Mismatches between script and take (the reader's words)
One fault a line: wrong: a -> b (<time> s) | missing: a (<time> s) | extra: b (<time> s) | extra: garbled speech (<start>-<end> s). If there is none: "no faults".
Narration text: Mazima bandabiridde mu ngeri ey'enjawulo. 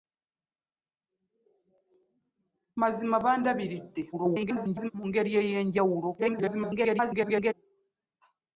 extra: garbled speech (4.1-4.9 s)
extra: garbled speech (6.2-7.5 s)